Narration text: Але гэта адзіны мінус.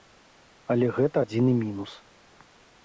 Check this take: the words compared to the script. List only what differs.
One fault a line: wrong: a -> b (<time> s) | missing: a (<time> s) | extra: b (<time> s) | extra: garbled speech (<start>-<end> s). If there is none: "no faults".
no faults